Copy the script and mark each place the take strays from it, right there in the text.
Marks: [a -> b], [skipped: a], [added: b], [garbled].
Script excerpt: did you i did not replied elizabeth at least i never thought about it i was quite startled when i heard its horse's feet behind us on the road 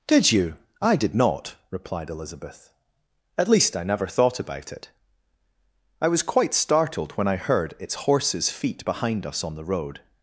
did you i did not replied elizabeth at least i never thought about it i was quite startled when i heard its horse's feet behind us on the road